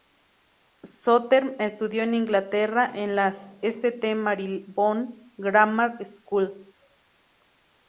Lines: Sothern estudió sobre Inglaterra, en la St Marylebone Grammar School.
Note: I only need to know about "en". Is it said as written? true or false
true